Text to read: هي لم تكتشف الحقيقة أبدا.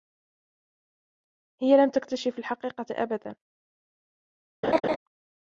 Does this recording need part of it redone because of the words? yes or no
no